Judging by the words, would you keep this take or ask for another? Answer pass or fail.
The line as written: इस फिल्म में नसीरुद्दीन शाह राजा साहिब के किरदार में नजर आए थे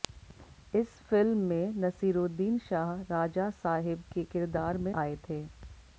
fail